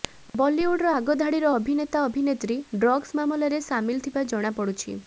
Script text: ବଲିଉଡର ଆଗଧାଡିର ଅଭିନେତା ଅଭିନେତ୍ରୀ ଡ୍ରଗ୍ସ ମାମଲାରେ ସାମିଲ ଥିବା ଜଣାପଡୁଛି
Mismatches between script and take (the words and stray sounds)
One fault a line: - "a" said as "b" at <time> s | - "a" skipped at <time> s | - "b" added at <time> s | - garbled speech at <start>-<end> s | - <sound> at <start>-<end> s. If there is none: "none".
none